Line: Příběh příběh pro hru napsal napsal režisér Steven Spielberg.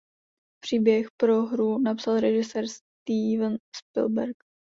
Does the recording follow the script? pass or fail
fail